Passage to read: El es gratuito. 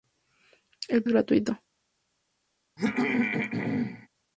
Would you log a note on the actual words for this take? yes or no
no